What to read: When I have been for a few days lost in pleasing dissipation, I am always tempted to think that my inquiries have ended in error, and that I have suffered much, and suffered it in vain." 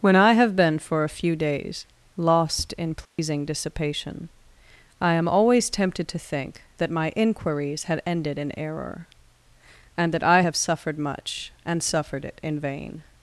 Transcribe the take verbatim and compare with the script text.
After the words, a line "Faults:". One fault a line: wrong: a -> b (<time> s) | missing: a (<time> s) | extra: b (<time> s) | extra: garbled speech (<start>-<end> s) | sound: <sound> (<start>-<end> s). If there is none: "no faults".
When I have been for a few days lost in pleasing dissipation, I am always tempted to think that my inquiries had ended in error, and that I have suffered much, and suffered it in vain."
Faults:
sound: dropout (3.1-3.2 s)
wrong: have -> had (7.8 s)